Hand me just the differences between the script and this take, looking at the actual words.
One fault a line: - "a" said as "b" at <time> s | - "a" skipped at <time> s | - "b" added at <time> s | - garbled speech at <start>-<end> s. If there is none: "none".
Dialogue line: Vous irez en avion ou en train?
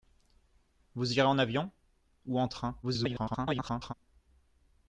- garbled speech at 2.8-3.9 s